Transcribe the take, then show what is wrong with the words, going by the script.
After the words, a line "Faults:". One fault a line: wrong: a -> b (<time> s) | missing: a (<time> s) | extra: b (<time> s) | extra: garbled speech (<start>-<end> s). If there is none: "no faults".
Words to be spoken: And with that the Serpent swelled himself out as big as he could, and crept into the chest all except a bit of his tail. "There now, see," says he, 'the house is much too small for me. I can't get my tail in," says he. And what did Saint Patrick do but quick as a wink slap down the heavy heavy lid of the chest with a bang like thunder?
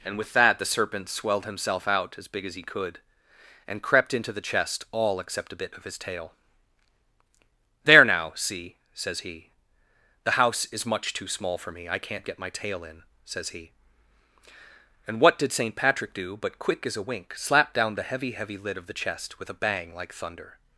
And with that the Serpent swelled himself out as big as he could, and crept into the chest all except a bit of his tail. "There now, see," says he, 'the house is much too small for me. I can't get my tail in," says he. And what did Saint Patrick do but quick as a wink slap down the heavy heavy lid of the chest with a bang like thunder?
Faults:
no faults